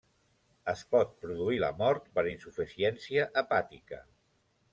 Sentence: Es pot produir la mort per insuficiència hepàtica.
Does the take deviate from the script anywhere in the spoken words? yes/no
no